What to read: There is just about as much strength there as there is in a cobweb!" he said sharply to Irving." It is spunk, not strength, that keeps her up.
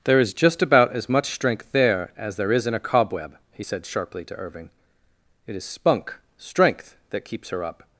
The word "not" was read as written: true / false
false